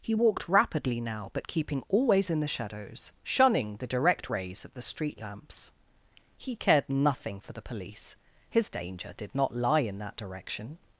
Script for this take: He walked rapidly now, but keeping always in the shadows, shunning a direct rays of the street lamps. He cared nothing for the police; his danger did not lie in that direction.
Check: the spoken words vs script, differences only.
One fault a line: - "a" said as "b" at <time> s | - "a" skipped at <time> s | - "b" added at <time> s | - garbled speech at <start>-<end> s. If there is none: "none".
- "a" said as "the" at 3.8 s